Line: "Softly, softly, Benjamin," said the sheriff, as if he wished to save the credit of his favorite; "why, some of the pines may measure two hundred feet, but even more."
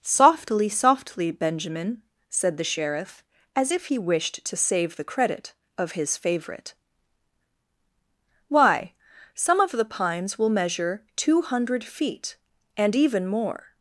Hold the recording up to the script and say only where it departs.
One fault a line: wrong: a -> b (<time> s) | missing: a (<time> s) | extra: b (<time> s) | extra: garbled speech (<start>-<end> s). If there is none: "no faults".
wrong: may -> will (10.4 s)
wrong: but -> and (12.8 s)